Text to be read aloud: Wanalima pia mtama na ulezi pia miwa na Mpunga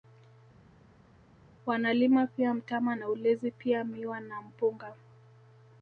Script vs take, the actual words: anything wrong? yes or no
no